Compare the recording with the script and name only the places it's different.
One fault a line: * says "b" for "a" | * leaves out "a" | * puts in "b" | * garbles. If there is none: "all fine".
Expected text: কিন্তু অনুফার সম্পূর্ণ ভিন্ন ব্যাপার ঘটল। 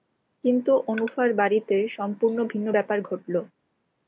* puts in "বাড়িতে"